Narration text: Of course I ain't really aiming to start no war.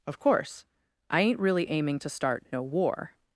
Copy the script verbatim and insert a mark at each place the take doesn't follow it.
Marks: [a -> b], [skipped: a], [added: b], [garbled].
Of course I ain't really aiming to start no war.